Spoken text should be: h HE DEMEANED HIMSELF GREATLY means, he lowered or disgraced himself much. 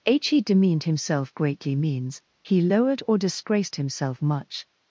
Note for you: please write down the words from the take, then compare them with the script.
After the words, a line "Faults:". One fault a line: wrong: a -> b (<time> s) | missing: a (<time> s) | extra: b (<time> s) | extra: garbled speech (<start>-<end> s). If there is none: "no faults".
h HE DEMEANED HIMSELF GREATLY means, he lowered or disgraced himself much.
Faults:
no faults